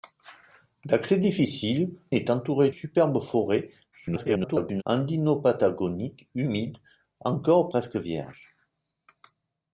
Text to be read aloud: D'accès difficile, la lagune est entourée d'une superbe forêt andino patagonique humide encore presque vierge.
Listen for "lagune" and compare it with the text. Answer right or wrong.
wrong